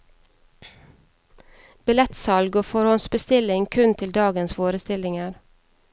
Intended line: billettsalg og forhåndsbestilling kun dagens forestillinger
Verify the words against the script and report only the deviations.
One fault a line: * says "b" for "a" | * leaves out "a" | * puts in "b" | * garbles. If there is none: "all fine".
* puts in "til"